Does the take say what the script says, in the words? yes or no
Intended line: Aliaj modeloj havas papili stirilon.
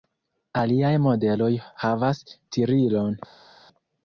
no